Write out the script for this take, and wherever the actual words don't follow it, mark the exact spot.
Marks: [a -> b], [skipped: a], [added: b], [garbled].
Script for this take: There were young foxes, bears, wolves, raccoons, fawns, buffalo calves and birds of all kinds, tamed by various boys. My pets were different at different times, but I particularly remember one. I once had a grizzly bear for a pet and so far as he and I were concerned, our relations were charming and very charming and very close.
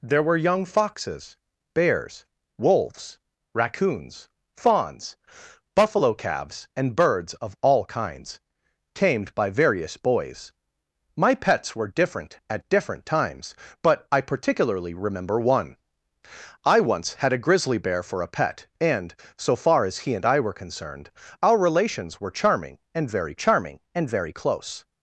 There were young foxes, bears, wolves, raccoons, fawns, buffalo calves and birds of all kinds, tamed by various boys. My pets were different at different times, but I particularly remember one. I once had a grizzly bear for a pet and so far as he and I were concerned, our relations were charming and very charming and very close.